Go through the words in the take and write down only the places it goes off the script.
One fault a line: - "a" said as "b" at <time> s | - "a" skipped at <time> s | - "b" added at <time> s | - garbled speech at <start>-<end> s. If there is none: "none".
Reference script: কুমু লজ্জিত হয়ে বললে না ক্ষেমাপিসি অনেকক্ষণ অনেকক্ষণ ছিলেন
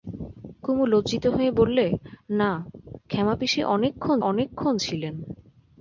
none